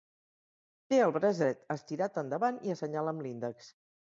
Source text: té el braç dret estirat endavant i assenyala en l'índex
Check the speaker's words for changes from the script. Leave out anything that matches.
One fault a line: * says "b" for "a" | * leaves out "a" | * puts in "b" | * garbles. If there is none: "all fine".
* says "amb" for "en"